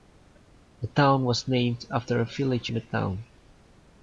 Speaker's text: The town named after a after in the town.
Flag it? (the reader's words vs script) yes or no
yes